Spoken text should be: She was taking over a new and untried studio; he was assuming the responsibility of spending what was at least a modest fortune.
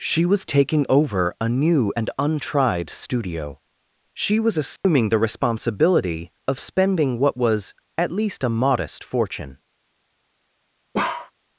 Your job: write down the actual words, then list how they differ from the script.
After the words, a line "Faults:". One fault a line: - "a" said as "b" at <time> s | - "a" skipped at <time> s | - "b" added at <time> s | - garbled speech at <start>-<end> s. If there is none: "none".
She was taking over a new and untried studio; she was assuming the responsibility of spending what was at least a modest fortune.
Faults:
- "he" said as "she" at 4.1 s